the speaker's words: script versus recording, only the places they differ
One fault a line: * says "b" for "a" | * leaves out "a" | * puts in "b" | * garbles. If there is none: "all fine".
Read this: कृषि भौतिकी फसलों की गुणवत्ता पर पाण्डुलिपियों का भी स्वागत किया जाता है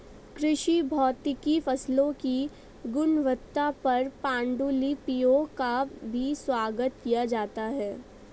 all fine